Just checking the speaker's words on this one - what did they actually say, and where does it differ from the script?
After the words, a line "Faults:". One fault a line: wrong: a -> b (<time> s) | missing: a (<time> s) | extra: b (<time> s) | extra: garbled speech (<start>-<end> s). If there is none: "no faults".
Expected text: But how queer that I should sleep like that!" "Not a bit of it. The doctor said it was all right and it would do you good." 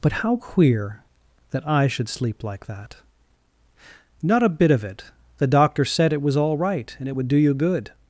But how queer that I should sleep like that!" "Not a bit of it. The doctor said it was all right and it would do you good."
Faults:
no faults